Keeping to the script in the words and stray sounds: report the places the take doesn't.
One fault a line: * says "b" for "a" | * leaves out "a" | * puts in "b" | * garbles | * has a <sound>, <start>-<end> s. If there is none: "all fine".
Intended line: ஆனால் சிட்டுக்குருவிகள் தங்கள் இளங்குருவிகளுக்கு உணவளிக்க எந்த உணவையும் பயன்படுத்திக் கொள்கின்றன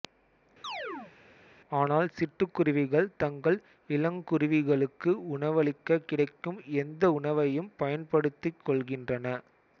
* has a chirp, 0.6-1.1 s
* puts in "கிடைக்கும்"